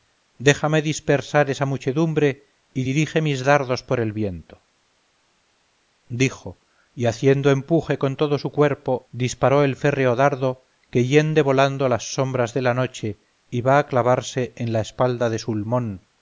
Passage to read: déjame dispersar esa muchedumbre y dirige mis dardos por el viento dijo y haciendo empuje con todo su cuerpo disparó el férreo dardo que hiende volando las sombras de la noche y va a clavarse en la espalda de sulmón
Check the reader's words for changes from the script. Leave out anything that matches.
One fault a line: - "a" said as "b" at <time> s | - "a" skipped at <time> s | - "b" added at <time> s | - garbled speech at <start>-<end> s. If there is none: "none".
none